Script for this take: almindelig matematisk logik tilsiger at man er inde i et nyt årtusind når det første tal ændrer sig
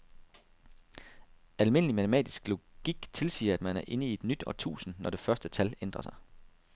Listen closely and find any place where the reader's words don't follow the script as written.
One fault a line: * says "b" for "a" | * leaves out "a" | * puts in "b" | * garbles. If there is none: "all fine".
all fine